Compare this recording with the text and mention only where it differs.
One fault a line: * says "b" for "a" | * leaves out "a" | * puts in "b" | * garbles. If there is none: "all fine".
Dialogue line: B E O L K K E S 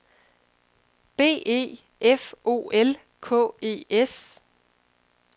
* puts in "F"
* leaves out "K"